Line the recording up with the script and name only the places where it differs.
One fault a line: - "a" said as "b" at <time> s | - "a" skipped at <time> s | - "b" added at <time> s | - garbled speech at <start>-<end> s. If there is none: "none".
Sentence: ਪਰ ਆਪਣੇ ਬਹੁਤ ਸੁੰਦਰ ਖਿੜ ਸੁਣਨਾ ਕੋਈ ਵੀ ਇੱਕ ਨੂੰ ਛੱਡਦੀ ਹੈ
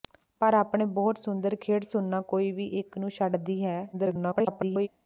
- garbled speech at 3.9-4.9 s